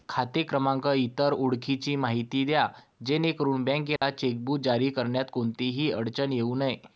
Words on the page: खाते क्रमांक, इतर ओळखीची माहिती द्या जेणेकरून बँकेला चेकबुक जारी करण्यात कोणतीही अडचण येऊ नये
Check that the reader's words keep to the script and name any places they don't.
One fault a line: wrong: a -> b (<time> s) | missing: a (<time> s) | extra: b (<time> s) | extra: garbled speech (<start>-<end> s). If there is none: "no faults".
no faults